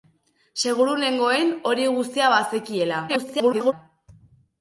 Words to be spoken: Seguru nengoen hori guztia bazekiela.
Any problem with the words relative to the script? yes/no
yes